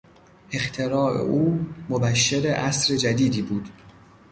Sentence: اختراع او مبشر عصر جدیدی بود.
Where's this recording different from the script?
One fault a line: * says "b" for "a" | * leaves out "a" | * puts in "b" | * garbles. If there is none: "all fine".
all fine